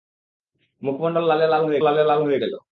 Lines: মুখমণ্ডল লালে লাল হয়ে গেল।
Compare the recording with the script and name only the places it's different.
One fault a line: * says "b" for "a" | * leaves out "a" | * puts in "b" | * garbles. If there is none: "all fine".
* puts in "লালে লাল হয়ে"